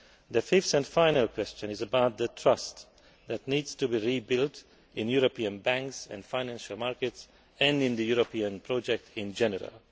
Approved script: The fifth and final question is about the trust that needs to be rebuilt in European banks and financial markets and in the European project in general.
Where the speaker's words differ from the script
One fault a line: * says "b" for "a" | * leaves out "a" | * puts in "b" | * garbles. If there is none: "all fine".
all fine